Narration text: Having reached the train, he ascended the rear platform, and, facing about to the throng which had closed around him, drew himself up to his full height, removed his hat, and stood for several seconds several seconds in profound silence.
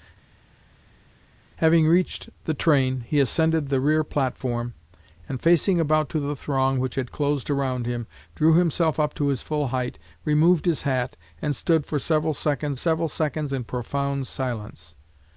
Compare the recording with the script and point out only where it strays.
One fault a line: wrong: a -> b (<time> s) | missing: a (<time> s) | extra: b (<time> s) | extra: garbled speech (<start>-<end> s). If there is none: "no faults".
no faults